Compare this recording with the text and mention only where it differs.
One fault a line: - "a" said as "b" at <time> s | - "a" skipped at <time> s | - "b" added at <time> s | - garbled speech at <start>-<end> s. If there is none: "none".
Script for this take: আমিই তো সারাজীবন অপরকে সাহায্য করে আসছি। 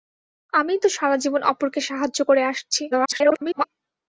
- garbled speech at 2.9-3.6 s